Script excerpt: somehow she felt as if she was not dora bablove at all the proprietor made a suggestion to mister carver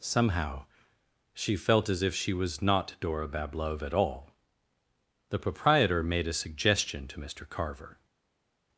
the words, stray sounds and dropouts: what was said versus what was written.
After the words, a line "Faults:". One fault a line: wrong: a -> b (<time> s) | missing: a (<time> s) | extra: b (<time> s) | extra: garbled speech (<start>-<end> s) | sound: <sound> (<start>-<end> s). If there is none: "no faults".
somehow she felt as if she was not dora bablove at all the proprietor made a suggestion to mister carver
Faults:
no faults